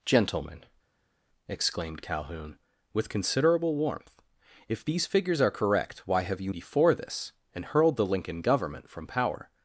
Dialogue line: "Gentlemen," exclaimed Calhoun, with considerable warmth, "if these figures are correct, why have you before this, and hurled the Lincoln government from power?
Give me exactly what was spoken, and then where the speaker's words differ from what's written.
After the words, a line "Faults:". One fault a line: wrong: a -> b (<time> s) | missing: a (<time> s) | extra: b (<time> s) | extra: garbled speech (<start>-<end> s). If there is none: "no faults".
"Gentlemen," exclaimed Calhoun, with considerable warmth, "if these figures are correct, why have you before this, and hurled the Lincoln government from power?
Faults:
no faults